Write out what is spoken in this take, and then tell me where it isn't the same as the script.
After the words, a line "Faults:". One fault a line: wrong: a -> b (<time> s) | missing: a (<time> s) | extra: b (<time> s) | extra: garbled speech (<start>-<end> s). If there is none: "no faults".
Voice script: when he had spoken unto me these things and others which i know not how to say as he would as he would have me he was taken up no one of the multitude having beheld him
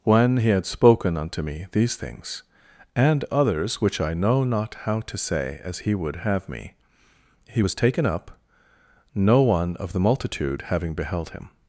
when he had spoken unto me these things and others which i know not how to say as he would have me he was taken up no one of the multitude having beheld him
Faults:
missing: as he would (6.2 s)